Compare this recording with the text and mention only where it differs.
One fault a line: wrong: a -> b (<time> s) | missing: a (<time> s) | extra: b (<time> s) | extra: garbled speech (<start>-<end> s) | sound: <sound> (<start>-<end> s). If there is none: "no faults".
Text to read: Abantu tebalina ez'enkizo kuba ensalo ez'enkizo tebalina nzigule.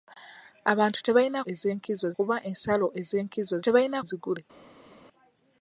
no faults